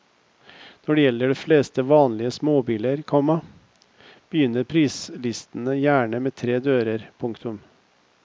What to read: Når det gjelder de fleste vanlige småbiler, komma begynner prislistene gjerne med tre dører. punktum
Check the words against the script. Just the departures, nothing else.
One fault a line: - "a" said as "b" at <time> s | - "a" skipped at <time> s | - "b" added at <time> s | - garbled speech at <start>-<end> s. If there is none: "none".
none